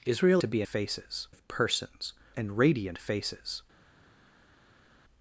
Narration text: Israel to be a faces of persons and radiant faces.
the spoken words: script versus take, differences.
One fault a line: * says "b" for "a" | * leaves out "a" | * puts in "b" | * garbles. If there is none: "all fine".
all fine